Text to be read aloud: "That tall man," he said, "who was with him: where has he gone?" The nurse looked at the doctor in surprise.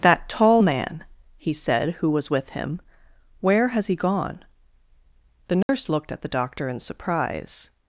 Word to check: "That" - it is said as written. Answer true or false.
true